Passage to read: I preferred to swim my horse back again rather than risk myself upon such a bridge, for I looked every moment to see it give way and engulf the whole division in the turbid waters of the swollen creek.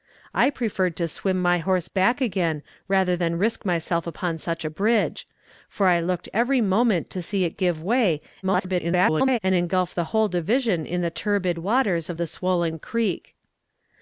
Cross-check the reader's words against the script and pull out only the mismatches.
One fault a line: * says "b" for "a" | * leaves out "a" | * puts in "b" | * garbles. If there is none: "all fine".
* garbles